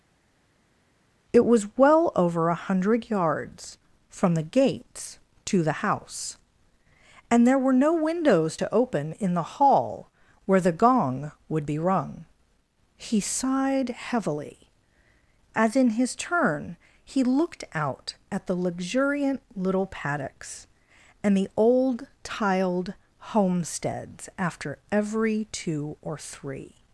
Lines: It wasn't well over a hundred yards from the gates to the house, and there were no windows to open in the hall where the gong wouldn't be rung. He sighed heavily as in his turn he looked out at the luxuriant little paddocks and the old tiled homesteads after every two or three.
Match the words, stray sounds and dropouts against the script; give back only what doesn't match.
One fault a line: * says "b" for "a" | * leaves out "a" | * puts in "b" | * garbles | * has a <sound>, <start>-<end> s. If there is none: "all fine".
* says "was" for "wasn't"
* says "would" for "wouldn't"